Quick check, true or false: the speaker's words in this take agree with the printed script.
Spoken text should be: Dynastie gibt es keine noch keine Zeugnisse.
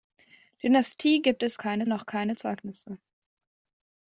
true